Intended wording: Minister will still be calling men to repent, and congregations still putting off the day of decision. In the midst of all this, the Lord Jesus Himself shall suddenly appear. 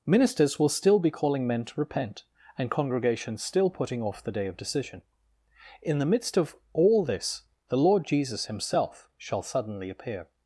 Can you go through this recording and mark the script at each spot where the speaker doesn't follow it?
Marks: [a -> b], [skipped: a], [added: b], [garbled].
[Minister -> Ministers] will still be calling men to repent, and congregations still putting off the day of decision. In the midst of all this, the Lord Jesus Himself shall suddenly appear.